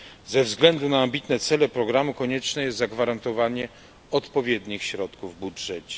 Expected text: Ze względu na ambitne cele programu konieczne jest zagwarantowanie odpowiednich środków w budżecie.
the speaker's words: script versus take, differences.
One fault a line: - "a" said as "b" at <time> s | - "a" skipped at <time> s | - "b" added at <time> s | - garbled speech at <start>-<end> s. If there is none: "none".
none